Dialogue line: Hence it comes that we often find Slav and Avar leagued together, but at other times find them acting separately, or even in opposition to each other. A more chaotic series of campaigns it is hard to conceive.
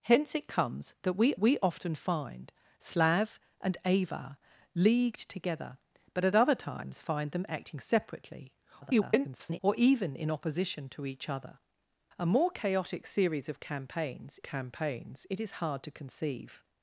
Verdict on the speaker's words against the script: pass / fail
fail